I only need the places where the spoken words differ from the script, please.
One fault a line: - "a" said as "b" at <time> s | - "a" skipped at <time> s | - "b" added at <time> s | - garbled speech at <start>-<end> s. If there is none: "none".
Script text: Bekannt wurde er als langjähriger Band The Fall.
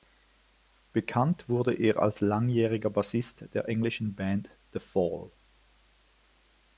- "Bassist der englischen" added at 2.9 s